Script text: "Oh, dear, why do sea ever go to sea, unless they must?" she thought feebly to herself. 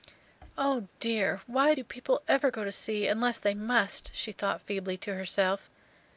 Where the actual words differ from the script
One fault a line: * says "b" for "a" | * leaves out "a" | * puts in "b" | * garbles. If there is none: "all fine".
* says "people" for "sea"